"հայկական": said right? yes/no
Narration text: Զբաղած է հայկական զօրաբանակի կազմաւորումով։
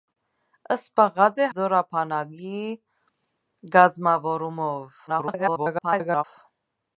no